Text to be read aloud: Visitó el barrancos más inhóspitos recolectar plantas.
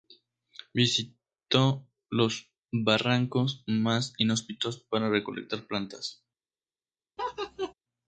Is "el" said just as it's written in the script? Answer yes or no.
no